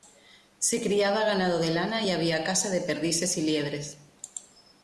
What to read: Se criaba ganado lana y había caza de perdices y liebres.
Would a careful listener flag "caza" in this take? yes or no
no